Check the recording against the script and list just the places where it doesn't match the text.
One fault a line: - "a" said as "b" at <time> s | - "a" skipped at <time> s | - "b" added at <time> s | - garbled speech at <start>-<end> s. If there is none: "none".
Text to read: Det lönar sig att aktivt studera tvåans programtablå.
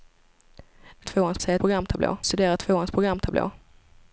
- "lönar" said as "tvåans" at 1.0 s
- "aktivt" said as "programtablå" at 1.6 s